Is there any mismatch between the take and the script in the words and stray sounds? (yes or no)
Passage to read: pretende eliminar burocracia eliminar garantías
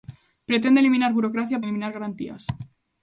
no